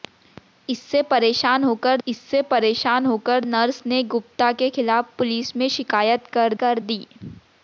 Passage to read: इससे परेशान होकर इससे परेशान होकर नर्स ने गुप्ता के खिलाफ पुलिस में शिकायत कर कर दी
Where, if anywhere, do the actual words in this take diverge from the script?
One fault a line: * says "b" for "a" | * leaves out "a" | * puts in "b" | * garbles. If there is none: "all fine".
all fine